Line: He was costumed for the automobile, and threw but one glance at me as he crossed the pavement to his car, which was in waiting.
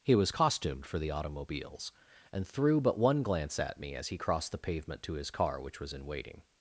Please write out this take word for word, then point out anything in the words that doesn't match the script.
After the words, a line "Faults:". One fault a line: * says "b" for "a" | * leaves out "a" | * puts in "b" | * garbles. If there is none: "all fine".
He was costumed for the automobiles, and threw but one glance at me as he crossed the pavement to his car, which was in waiting.
Faults:
* says "automobiles" for "automobile"